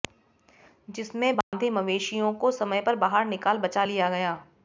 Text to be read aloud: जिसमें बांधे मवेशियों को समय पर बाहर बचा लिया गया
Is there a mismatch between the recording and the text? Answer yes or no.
yes